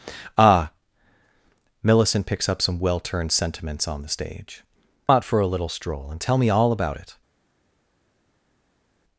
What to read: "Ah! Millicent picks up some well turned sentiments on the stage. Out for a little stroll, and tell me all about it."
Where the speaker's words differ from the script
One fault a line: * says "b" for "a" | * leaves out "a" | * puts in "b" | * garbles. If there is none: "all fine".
all fine